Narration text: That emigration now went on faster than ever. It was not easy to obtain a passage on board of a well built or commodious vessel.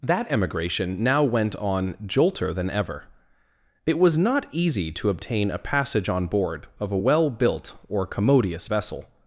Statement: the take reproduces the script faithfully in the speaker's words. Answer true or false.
false